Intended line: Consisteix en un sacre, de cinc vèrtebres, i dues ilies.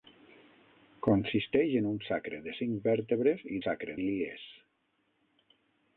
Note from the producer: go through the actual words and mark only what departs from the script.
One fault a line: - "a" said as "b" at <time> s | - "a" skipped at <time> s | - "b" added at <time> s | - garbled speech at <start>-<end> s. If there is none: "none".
- "dues" said as "sacre" at 3.6 s